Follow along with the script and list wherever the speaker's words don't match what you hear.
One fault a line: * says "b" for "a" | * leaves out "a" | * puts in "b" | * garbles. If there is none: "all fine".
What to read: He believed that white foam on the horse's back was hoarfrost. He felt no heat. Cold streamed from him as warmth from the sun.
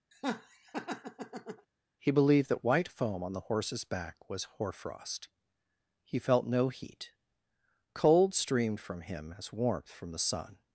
all fine